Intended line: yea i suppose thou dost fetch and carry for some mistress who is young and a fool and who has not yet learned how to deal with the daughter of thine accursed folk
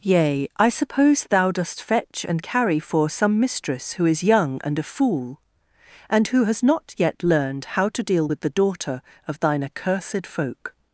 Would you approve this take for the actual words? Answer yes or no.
yes